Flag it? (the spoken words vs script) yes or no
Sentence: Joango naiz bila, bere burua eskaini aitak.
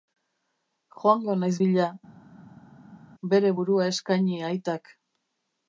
no